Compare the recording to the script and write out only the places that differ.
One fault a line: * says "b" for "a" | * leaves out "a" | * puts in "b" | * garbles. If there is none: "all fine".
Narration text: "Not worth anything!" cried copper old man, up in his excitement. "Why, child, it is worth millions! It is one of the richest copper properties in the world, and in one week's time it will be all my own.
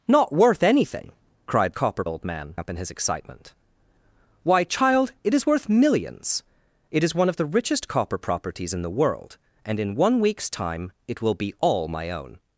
all fine